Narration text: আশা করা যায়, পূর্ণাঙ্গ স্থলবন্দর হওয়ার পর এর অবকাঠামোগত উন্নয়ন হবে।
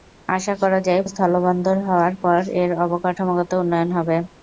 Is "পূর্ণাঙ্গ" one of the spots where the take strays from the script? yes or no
yes